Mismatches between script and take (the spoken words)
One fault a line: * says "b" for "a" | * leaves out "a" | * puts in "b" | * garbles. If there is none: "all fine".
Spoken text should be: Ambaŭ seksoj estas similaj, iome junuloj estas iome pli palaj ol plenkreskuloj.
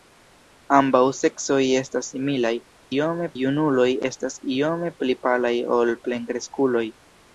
all fine